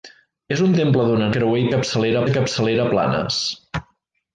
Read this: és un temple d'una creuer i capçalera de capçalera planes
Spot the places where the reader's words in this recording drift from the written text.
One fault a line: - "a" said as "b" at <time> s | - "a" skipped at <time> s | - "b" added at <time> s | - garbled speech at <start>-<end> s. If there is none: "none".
none